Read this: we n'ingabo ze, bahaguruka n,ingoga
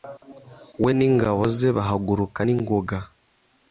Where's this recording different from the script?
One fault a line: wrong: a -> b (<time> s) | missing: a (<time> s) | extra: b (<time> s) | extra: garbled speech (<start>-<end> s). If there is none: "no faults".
no faults